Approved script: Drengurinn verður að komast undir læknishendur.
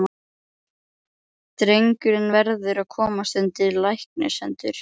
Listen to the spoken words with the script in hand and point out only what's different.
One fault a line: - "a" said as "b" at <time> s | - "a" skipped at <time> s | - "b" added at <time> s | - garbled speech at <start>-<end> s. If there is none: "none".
none